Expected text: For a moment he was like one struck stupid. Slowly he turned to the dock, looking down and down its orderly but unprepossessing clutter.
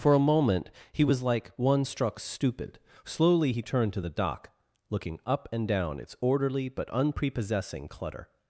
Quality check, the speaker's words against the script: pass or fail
fail